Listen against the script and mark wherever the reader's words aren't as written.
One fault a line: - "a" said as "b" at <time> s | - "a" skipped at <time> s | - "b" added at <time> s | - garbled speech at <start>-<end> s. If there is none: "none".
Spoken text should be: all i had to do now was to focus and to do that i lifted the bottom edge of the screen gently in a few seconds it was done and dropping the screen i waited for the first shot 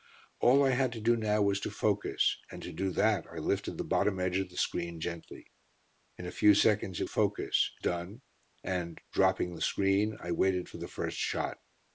- "was" said as "focus" at 7.0 s